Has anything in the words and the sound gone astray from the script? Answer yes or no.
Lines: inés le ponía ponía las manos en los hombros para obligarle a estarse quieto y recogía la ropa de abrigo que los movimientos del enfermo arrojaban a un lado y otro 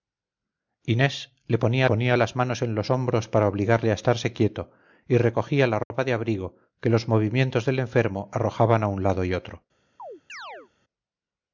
yes